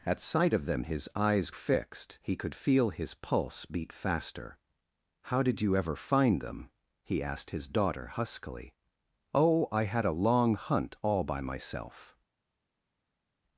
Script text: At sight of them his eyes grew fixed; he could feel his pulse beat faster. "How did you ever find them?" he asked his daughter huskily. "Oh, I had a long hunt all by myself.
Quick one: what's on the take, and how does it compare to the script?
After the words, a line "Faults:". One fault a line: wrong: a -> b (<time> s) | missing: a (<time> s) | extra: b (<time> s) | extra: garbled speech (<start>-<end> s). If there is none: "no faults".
At sight of them his eyes fixed; he could feel his pulse beat faster. "How did you ever find them?" he asked his daughter huskily. "Oh, I had a long hunt all by myself.
Faults:
missing: grew (1.5 s)